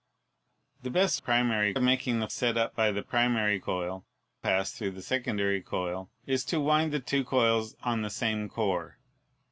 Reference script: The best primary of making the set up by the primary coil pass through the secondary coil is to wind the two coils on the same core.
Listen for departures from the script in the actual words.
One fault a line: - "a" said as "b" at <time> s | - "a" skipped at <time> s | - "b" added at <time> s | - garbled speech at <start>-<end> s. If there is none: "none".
none